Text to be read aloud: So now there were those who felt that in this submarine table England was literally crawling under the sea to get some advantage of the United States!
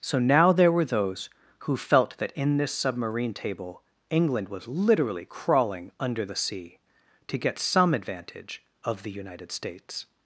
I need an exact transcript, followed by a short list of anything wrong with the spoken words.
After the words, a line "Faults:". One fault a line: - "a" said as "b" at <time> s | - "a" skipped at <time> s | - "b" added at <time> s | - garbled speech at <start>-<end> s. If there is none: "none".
So now there were those who felt that in this submarine table England was literally crawling under the sea to get some advantage of the United States!
Faults:
none